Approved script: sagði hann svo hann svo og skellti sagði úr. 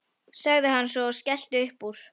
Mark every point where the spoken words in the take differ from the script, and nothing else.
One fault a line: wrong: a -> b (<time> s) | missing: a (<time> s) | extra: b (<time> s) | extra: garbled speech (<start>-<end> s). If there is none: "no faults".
missing: hann svo (1.1 s)
wrong: sagði -> upp (1.7 s)